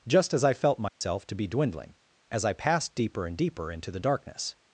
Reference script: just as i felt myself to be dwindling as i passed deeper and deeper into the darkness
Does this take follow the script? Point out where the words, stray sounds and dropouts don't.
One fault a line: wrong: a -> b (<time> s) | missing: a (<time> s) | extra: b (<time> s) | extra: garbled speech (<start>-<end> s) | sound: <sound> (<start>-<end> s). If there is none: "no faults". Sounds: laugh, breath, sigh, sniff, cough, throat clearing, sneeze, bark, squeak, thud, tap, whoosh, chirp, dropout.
sound: dropout (0.9-1.0 s)